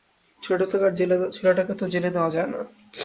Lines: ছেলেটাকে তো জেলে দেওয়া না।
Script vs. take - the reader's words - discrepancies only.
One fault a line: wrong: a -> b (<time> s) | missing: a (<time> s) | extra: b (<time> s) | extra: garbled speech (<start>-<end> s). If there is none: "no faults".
extra: যায় (2.3 s)